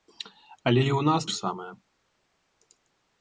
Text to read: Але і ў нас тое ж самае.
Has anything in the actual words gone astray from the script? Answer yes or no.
yes